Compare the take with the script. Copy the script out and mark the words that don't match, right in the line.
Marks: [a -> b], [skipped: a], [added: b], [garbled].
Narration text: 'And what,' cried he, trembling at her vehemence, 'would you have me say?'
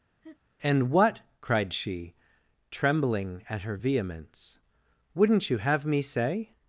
'And what,' cried [he, -> she] trembling at her vehemence, ['would -> wouldn't] you have me say?'